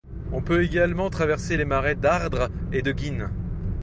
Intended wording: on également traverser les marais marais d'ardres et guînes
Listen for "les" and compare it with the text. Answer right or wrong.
right